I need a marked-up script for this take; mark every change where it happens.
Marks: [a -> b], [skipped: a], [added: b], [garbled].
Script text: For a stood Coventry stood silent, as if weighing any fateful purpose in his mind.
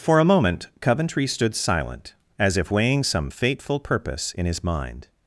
For a [stood -> moment] Coventry stood silent, as if weighing [any -> some] fateful purpose in his mind.